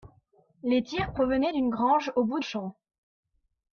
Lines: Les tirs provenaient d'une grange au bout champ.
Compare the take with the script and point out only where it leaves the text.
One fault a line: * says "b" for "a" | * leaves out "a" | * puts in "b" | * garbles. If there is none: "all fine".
all fine